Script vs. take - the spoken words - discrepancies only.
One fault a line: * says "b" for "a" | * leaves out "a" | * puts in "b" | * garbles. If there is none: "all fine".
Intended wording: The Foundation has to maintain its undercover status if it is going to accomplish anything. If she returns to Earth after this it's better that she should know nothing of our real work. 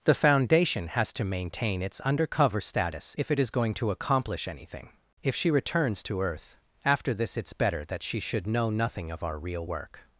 all fine